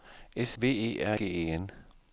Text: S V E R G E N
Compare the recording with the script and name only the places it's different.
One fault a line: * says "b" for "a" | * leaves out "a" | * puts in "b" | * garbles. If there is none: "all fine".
all fine